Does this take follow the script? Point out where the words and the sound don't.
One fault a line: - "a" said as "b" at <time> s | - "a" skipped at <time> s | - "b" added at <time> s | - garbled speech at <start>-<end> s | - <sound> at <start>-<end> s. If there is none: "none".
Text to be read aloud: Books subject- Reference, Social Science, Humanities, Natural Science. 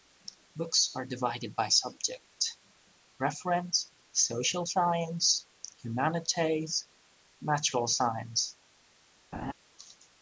- "are divided by" added at 0.9 s
- laugh at 9.3-9.5 s